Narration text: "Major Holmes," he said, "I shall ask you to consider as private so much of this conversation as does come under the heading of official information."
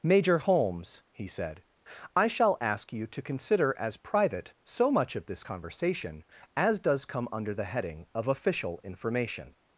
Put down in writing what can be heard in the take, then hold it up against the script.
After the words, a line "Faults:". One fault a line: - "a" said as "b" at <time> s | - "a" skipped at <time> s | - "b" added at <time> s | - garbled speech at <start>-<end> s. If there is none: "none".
"Major Holmes," he said, "I shall ask you to consider as private so much of this conversation as does come under the heading of official information."
Faults:
none